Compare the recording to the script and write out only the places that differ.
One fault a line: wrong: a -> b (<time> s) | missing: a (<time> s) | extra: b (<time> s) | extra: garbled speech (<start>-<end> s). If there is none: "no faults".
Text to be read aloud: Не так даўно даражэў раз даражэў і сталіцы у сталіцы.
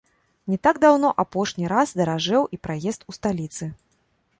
wrong: даражэў -> апошні (1.2 s)
wrong: сталіцы -> праезд (2.7 s)